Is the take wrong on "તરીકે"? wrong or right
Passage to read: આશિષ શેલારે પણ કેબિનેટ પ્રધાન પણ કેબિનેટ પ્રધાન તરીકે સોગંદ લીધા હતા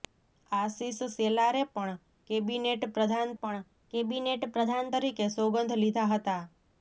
right